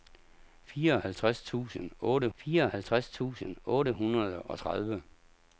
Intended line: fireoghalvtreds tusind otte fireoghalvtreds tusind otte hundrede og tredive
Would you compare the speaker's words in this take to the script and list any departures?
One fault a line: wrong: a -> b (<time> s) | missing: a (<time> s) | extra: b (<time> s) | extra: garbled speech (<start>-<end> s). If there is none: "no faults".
no faults